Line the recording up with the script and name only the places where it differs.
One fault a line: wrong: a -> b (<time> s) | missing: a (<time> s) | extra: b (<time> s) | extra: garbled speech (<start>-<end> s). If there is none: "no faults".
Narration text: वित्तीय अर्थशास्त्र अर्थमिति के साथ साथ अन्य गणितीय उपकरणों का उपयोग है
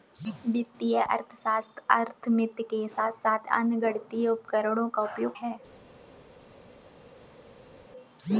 no faults